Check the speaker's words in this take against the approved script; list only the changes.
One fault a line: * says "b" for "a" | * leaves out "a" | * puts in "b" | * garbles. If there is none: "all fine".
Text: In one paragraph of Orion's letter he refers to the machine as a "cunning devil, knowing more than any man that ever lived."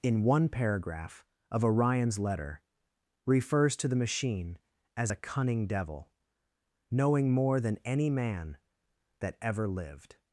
* leaves out "he"